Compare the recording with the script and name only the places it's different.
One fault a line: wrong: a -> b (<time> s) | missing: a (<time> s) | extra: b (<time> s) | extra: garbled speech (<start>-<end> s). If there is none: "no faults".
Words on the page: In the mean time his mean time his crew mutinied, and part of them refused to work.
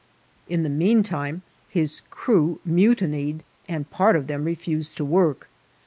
missing: mean time his (2.0 s)